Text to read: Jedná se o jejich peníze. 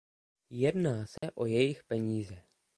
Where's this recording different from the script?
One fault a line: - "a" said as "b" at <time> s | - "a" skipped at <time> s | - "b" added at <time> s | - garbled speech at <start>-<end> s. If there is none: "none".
none